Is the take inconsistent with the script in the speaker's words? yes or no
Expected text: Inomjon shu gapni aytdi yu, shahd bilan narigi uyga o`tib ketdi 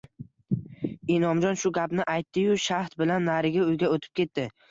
no